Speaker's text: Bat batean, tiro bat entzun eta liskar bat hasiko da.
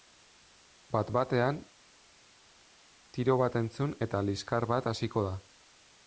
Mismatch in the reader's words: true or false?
false